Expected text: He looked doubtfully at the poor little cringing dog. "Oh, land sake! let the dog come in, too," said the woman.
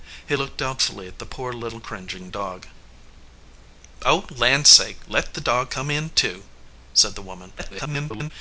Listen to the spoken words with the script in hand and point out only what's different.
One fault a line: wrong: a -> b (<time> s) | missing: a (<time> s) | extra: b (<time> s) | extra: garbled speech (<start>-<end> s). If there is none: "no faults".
extra: garbled speech (7.6-8.3 s)